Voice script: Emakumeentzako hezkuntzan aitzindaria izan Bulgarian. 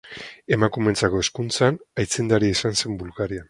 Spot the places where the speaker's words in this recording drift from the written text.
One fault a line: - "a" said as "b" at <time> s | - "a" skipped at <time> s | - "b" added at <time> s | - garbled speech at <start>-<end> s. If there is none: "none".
- "zen" added at 2.8 s